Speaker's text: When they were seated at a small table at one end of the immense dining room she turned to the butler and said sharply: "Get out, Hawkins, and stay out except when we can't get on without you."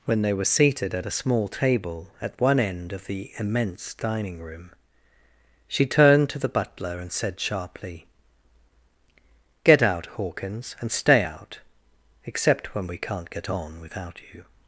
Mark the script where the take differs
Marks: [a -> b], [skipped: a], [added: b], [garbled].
When they were seated at a small table at one end of the immense dining room she turned to the butler and said sharply: "Get out, Hawkins, and stay out except when we can't get on without you."